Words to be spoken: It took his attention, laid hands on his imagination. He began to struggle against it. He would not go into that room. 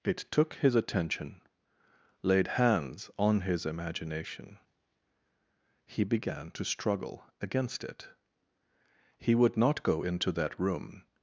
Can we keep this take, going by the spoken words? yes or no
yes